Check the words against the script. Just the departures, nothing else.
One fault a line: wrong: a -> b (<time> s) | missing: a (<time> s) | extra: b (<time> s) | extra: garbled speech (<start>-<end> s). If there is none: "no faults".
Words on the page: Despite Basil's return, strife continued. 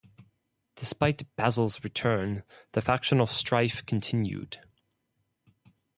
extra: the factional (2.7 s)